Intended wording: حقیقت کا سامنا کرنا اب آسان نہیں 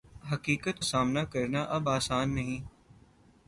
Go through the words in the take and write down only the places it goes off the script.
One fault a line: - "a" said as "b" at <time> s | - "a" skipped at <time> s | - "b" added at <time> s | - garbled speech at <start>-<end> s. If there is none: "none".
- "کا" skipped at 0.8 s